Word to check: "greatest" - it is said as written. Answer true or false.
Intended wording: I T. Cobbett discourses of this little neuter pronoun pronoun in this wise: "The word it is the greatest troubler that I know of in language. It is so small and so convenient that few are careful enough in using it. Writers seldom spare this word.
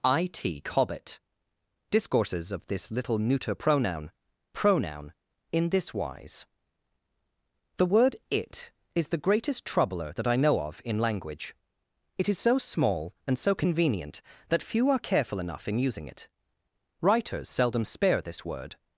true